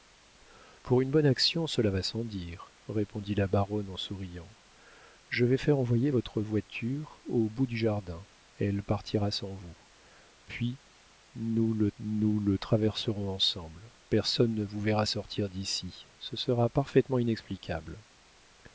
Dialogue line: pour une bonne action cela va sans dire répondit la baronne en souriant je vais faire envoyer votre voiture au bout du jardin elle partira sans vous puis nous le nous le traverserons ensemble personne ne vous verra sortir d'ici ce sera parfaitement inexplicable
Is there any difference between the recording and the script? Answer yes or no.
no